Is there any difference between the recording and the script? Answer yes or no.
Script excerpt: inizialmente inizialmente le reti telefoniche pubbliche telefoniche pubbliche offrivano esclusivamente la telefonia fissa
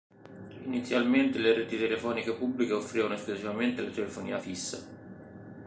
yes